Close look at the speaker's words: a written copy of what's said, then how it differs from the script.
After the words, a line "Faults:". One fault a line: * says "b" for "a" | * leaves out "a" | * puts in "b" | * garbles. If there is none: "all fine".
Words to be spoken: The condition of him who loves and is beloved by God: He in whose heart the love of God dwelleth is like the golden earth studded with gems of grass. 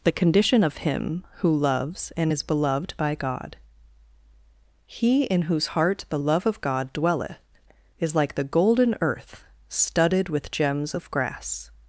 The condition of him who loves and is beloved by God: He in whose heart the love of God dwelleth is like the golden earth studded with gems of grass.
Faults:
all fine